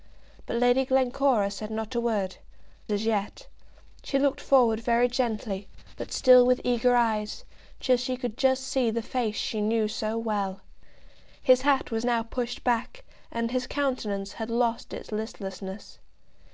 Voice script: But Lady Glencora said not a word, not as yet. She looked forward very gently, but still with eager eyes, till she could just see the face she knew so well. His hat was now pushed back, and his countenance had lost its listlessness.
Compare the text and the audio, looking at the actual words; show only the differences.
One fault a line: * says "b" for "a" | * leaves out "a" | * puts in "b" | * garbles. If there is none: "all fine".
* leaves out "not"